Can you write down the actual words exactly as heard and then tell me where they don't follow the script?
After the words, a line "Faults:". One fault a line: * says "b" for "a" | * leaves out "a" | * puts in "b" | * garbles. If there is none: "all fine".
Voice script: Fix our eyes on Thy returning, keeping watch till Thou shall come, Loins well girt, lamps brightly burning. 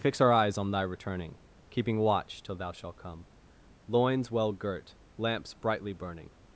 Fix our eyes on Thy returning, keeping watch till Thou shalt come, Loins well girt, lamps brightly burning.
Faults:
* says "shalt" for "shall"